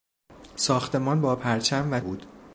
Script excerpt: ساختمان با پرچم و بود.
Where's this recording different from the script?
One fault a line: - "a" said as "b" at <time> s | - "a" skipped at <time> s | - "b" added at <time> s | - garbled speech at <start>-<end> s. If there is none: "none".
none